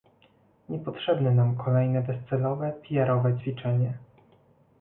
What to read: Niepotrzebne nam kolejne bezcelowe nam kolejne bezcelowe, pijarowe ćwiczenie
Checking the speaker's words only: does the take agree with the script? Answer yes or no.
no